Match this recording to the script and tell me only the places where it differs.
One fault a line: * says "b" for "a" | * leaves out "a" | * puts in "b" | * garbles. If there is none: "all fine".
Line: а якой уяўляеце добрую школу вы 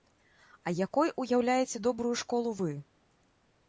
all fine